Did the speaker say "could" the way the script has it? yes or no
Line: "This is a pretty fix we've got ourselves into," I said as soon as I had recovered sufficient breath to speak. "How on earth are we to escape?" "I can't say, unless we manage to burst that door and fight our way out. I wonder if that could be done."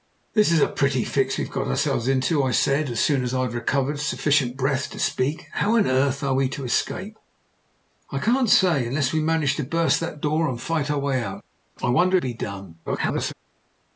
no